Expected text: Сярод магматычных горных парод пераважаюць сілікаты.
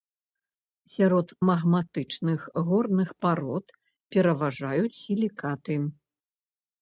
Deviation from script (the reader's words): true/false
false